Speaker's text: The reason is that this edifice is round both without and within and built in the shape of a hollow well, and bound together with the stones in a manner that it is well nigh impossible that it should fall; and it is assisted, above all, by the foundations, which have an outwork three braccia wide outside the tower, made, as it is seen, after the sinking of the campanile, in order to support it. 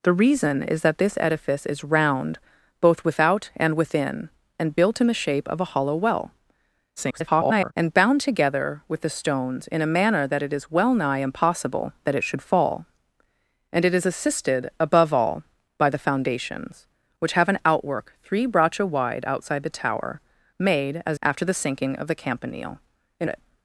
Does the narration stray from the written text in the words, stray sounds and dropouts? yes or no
yes